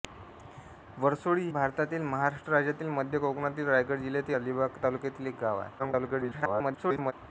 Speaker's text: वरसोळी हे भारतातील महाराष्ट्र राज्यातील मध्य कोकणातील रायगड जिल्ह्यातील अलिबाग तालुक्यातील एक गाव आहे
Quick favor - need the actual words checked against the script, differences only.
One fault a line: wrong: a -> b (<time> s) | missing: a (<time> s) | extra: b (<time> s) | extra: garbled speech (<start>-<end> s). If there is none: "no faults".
missing: हे (1.5 s)
extra: garbled speech (5.8-7.1 s)